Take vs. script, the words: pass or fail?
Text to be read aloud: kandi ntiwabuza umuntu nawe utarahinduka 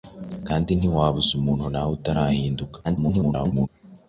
fail